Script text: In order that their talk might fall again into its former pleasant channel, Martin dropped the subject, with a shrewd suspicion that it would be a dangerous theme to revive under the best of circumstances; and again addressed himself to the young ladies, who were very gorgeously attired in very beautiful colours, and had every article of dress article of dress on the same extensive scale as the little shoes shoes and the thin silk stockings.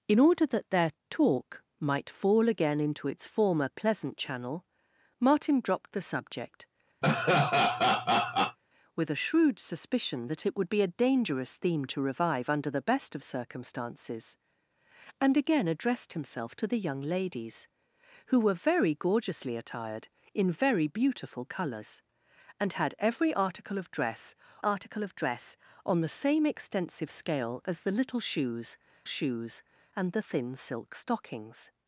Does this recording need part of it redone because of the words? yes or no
no